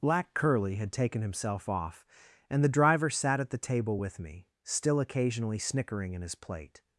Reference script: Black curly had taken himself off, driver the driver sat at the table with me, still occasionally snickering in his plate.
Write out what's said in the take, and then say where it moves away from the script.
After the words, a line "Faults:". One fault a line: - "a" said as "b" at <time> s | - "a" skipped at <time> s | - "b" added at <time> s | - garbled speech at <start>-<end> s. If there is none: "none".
Black curly had taken himself off, and the driver sat at the table with me, still occasionally snickering in his plate.
Faults:
- "driver" said as "and" at 2.5 s